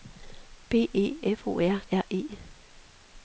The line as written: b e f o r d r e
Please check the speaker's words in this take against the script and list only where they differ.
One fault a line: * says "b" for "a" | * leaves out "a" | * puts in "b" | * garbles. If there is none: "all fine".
* leaves out "d"